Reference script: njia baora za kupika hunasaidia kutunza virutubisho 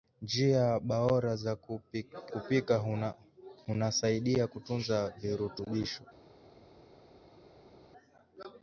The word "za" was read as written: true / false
false